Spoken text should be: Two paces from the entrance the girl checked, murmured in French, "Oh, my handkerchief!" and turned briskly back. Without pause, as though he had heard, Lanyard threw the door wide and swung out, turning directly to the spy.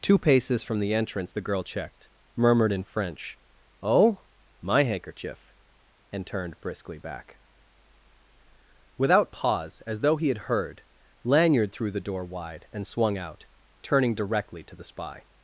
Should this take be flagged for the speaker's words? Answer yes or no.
no